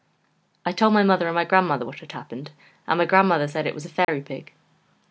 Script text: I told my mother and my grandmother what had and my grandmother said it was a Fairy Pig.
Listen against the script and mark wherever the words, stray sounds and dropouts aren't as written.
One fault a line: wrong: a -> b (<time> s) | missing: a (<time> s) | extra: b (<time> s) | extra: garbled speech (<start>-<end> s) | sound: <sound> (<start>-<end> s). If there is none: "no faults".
extra: happened (2.1 s)
sound: dropout (4.0-4.1 s)